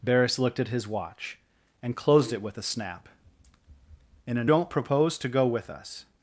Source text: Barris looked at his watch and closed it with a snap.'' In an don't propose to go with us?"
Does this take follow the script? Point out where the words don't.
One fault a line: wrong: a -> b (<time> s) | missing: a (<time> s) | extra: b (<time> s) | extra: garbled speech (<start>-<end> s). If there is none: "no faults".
no faults